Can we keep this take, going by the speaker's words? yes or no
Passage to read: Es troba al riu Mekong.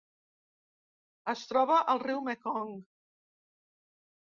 yes